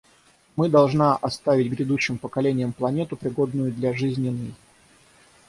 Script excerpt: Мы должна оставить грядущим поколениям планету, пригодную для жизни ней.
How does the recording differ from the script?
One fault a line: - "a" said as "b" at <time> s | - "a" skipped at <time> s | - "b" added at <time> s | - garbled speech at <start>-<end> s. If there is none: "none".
none